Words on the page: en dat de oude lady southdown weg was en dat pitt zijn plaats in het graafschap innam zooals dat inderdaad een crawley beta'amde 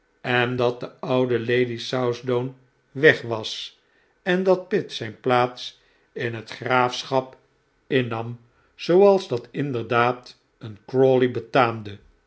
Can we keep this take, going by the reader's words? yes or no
yes